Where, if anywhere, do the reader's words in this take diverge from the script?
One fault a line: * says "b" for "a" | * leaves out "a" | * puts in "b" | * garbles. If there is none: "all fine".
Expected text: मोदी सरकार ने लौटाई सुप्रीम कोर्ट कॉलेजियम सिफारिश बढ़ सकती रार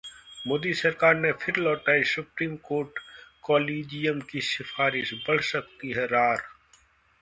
* puts in "फिर"
* puts in "की"
* puts in "है"